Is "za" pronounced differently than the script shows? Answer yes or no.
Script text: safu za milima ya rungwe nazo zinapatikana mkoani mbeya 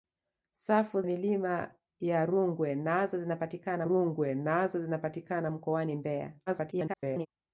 yes